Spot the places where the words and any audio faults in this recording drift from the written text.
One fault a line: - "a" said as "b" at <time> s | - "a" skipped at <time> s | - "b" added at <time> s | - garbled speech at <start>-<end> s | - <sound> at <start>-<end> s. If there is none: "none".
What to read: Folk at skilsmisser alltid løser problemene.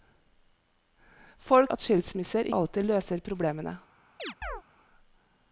- chirp at 4.2-4.6 s